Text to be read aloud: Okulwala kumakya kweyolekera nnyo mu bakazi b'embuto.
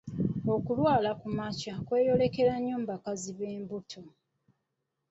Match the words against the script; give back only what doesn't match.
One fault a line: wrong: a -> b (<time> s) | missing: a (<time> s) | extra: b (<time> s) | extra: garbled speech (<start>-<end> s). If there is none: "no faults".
no faults